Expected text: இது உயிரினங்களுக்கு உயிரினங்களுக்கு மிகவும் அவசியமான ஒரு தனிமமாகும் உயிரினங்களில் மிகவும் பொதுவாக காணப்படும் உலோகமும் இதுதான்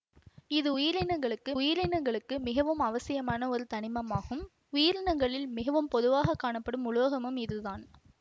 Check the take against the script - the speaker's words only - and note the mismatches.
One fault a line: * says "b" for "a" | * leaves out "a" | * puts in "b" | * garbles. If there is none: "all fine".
all fine